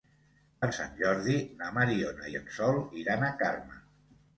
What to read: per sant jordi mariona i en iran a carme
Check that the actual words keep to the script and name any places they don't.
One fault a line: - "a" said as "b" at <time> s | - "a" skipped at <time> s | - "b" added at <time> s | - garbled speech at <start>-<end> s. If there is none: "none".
- "na" added at 1.6 s
- "sol" added at 2.6 s